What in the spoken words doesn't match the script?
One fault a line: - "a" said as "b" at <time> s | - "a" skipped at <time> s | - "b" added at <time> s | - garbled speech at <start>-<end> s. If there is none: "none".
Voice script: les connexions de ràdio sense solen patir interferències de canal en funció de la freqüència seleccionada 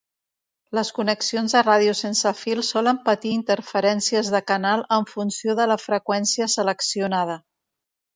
- "fil" added at 2.4 s